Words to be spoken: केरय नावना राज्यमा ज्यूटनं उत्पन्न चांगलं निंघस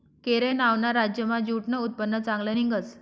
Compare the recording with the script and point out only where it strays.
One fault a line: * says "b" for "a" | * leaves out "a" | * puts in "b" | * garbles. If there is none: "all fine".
all fine